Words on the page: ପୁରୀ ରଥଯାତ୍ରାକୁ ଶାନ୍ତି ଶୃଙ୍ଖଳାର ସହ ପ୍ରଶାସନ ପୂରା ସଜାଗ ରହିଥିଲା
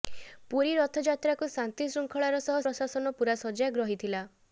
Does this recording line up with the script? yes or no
yes